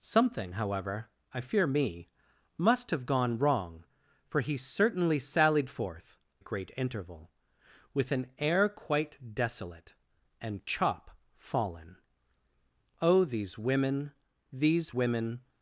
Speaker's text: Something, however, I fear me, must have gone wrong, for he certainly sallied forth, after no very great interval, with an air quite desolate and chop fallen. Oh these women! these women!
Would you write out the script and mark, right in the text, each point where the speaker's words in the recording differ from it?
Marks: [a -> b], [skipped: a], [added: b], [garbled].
Something, however, I fear me, must have gone wrong, for he certainly sallied forth, [skipped: after no very] great interval, with an air quite desolate and chop fallen. Oh these women! these women!